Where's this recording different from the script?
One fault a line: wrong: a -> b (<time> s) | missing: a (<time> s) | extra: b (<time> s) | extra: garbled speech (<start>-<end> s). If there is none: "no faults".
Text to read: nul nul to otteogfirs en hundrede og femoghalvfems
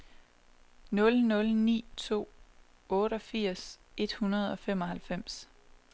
extra: ni (1.6 s)
wrong: en -> et (4.0 s)